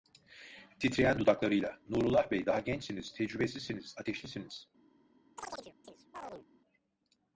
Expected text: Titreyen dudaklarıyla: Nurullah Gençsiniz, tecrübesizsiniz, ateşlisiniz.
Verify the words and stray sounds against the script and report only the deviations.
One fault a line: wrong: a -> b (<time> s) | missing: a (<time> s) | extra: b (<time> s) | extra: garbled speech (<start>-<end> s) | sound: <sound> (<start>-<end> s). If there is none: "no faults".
extra: Bey daha (2.3 s)
sound: chirp (5.4-6.5 s)